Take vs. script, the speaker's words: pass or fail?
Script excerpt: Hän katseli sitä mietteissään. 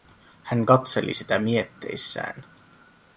pass